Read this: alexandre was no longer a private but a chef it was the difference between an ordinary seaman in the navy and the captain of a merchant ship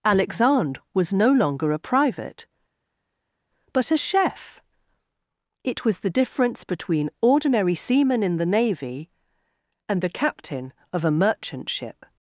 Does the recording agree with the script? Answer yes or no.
no